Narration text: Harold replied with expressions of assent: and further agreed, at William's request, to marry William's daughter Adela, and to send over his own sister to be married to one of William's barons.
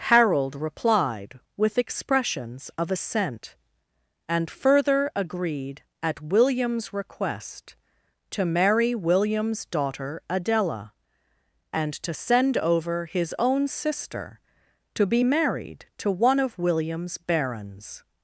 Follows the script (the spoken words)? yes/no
yes